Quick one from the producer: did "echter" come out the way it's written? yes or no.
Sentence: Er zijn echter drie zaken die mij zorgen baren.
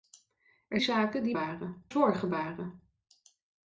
no